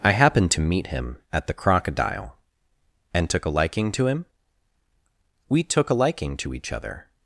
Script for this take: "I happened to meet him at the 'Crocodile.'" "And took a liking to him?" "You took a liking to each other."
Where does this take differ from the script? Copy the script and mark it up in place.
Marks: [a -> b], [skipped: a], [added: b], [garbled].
"I happened to meet him at the 'Crocodile.'" "And took a liking to him?" ["You -> We] took a liking to each other."